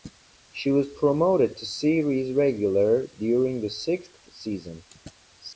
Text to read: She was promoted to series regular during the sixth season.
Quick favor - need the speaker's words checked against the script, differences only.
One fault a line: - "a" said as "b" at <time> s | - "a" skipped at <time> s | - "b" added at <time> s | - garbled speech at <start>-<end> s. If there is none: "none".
none